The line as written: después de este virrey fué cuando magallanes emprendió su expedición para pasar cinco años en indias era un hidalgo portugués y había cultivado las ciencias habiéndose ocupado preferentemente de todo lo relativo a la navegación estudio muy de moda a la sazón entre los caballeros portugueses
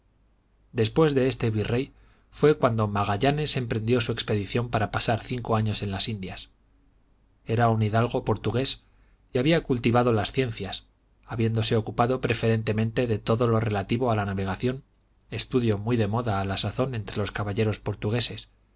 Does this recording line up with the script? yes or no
no